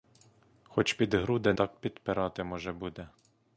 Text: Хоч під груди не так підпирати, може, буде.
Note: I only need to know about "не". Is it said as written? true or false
false